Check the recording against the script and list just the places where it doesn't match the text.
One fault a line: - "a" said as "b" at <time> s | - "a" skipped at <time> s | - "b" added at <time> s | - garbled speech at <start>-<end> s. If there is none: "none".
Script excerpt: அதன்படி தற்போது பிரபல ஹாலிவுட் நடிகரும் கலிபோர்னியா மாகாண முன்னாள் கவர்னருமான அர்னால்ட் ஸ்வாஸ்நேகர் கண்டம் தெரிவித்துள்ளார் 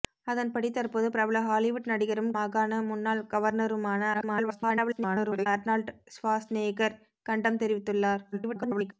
- "கலிபோர்னியா" skipped at 2.3 s
- garbled speech at 4.1-5.5 s
- garbled speech at 8.3-8.9 s